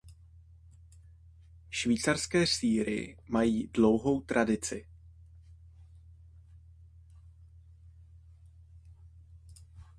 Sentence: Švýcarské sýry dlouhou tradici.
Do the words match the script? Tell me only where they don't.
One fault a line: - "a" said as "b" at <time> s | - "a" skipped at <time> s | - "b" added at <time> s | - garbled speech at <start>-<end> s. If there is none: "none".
- "mají" added at 3.3 s